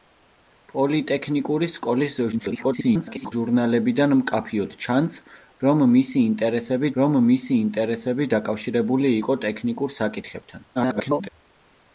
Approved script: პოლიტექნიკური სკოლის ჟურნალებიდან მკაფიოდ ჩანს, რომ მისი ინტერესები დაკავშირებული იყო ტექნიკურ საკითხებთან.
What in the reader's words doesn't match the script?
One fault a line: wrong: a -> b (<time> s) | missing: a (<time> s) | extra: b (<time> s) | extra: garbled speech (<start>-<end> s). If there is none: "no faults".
extra: garbled speech (2.3-3.3 s)
extra: რომ მისი ინტერესები (7.0 s)
extra: garbled speech (10.8-11.3 s)